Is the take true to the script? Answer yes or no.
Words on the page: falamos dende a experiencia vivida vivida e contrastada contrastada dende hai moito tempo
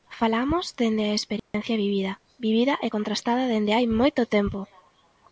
no